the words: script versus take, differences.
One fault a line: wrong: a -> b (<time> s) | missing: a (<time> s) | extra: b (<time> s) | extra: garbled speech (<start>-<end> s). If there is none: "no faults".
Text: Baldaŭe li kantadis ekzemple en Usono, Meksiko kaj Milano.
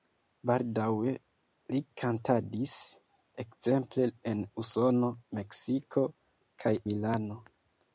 no faults